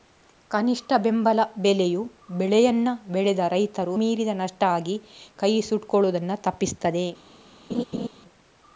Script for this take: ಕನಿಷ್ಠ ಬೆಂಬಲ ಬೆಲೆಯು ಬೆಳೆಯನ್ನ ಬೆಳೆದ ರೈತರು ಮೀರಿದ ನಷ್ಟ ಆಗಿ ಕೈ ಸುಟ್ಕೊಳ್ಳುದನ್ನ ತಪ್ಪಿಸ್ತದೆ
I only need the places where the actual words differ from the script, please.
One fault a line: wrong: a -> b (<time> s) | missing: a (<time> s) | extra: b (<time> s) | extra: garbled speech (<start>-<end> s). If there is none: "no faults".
no faults